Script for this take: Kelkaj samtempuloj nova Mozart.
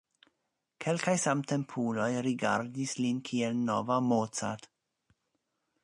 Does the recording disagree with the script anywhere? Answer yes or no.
yes